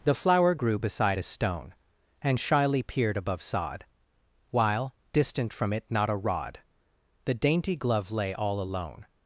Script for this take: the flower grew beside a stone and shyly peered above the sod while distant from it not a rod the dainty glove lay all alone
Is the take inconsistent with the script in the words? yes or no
yes